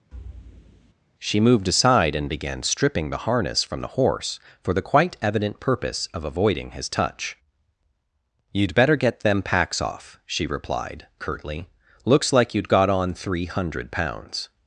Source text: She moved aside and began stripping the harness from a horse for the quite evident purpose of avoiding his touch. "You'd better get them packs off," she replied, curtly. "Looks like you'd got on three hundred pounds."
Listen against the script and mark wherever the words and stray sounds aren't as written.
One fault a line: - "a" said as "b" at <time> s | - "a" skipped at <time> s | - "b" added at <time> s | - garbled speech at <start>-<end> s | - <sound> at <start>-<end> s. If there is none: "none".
- thud at 0.1-0.9 s
- "a" said as "the" at 3.8 s